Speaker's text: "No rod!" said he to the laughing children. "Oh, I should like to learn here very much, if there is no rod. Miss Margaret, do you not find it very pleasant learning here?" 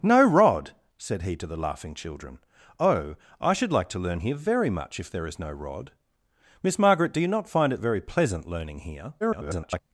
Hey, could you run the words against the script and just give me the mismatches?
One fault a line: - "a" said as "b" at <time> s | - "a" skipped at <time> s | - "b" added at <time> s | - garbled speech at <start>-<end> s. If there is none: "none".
- garbled speech at 9.2-9.8 s